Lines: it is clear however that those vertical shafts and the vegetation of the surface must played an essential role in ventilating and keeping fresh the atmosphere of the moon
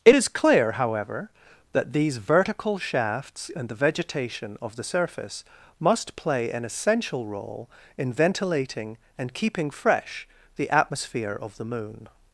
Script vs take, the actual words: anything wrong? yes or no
yes